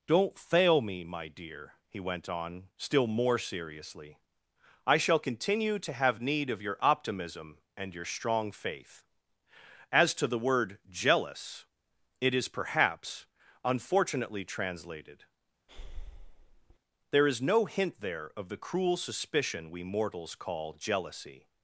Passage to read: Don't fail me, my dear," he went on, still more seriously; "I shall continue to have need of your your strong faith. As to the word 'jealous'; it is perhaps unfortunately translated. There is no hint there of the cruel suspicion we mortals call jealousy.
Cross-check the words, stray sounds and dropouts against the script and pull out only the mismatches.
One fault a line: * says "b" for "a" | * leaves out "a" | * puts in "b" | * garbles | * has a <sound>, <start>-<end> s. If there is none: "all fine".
* puts in "optimism and"
* has a breath, 15.7-16.8 s